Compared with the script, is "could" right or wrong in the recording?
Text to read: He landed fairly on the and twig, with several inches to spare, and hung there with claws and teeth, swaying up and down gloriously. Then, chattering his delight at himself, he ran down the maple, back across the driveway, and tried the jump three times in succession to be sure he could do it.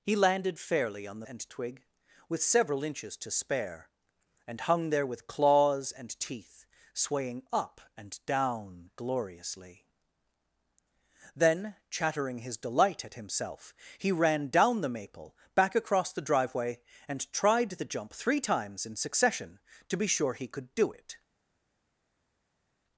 right